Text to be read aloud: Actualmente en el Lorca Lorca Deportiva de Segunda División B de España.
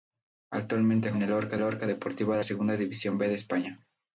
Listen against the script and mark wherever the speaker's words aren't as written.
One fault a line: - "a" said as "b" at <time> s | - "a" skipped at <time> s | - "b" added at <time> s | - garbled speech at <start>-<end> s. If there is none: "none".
none